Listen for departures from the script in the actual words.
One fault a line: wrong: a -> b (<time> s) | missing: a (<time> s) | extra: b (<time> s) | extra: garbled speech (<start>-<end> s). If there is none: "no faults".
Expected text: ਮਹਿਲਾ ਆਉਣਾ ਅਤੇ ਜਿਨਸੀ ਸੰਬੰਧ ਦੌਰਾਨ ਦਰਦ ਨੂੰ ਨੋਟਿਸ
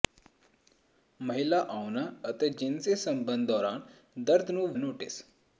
no faults